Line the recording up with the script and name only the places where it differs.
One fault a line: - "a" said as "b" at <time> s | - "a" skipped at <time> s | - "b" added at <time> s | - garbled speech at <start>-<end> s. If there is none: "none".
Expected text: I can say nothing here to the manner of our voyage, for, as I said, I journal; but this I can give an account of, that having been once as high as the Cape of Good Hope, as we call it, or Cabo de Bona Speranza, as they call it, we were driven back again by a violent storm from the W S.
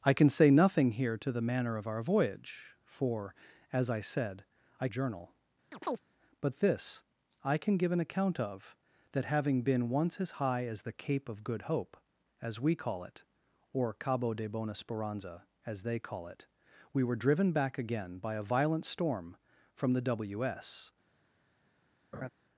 none